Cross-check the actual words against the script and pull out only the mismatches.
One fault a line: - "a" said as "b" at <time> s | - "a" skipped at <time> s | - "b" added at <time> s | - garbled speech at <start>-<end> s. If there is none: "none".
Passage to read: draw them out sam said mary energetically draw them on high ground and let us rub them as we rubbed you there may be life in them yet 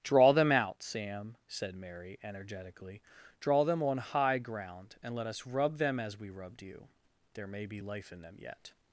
none